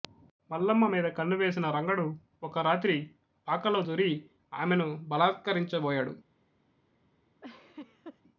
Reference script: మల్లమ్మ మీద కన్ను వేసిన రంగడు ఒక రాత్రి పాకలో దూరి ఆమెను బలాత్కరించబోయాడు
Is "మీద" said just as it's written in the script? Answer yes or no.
yes